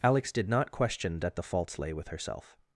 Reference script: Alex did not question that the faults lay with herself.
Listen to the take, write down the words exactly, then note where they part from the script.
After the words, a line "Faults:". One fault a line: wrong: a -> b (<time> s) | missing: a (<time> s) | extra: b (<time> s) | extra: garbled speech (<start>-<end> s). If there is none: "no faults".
Alex did not question that the faults lay with herself.
Faults:
no faults